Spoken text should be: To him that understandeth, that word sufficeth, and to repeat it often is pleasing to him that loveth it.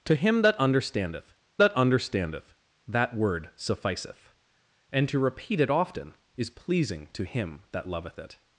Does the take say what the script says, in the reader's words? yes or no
no